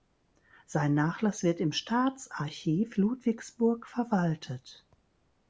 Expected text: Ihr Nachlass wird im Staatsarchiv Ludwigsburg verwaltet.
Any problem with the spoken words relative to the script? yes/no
yes